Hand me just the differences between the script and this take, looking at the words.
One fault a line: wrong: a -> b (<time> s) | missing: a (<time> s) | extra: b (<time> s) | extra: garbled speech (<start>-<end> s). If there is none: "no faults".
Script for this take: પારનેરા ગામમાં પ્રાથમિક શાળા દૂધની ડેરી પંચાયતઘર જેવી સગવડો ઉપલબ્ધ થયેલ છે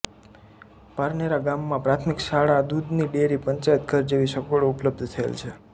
no faults